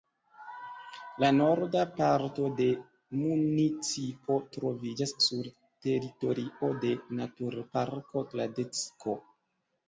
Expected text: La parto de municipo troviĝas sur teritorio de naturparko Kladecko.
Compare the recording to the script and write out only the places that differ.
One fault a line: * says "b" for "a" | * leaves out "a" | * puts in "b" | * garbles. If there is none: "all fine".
* puts in "norda"